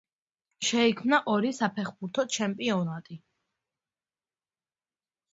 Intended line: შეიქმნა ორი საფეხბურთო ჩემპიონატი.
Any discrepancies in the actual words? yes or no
no